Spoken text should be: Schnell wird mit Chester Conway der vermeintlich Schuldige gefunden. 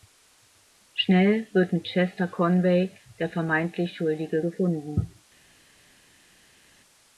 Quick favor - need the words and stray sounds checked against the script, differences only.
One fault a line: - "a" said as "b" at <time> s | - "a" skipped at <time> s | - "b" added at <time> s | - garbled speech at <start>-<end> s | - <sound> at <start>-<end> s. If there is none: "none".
none